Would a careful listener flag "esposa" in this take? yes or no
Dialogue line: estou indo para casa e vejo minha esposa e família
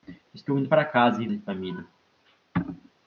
yes